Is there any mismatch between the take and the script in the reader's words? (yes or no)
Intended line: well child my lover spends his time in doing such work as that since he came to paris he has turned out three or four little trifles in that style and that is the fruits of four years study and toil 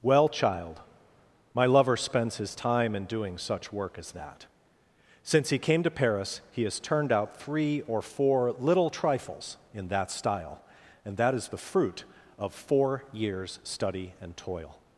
yes